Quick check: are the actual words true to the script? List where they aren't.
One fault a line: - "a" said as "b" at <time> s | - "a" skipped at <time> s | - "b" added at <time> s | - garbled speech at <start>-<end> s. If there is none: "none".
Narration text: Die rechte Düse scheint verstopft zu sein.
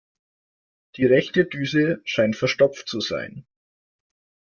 none